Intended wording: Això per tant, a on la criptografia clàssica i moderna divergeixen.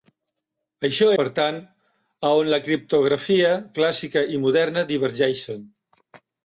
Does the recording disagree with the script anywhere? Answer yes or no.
no